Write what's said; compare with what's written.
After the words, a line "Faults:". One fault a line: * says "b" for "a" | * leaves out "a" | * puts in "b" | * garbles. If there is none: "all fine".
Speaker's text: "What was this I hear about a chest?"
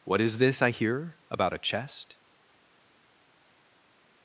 "What is this I hear about a chest?"
Faults:
* says "is" for "was"